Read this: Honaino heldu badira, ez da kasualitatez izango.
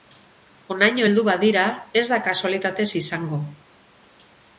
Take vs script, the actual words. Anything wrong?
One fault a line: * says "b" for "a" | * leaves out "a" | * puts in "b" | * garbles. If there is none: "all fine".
all fine